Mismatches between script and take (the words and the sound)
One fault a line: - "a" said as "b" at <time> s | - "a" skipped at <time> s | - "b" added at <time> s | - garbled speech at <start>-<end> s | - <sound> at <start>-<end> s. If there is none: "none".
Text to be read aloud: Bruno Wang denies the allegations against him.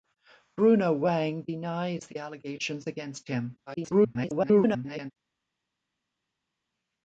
- garbled speech at 3.7-5.1 s